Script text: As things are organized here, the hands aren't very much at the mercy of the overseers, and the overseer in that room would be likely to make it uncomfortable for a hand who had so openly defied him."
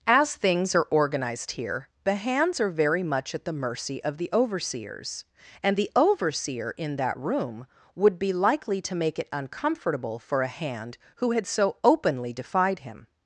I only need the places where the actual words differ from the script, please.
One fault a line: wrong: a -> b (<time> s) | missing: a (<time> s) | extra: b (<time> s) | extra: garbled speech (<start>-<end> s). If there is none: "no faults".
wrong: aren't -> are (2.6 s)